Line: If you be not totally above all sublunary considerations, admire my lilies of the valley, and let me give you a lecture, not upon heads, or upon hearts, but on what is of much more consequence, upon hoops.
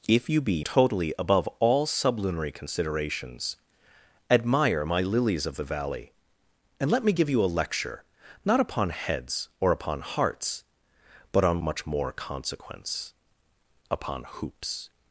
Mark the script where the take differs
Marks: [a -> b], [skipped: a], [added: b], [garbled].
If you be [skipped: not] totally above all sublunary considerations, admire my lilies of the valley, and let me give you a lecture, not upon heads, or upon hearts, but on [skipped: what is of] much more consequence, upon hoops.